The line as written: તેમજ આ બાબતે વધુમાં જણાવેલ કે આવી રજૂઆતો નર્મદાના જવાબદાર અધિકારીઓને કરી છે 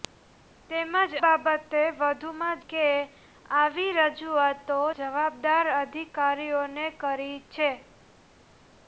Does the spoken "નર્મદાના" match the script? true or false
false